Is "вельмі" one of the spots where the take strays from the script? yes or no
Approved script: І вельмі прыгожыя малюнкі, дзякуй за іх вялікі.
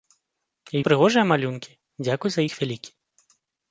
yes